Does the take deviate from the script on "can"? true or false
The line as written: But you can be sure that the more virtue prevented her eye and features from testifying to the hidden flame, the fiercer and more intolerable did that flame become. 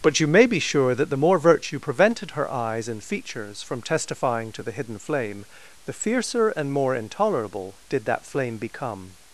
true